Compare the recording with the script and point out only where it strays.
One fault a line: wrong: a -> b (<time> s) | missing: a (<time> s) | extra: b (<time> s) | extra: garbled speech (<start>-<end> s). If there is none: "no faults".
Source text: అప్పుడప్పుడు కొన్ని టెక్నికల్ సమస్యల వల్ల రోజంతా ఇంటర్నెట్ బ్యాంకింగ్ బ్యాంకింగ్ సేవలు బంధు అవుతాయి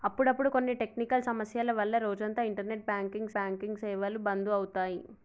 no faults